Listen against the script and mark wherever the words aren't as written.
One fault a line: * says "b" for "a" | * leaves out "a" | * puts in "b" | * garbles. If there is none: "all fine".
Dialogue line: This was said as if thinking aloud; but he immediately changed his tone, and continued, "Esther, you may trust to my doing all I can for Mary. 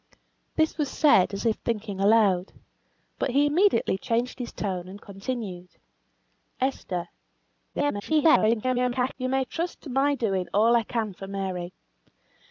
* garbles